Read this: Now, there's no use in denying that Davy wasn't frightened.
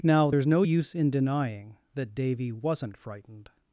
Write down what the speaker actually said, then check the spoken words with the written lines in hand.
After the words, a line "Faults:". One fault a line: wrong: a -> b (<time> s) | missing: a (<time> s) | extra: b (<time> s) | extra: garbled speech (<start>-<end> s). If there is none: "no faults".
Now, there's no use in denying that Davy wasn't frightened.
Faults:
no faults